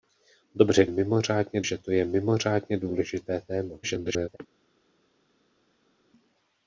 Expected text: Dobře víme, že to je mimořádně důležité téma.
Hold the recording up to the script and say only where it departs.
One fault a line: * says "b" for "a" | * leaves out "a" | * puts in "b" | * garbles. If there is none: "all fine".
* says "mimořádně" for "víme"
* garbles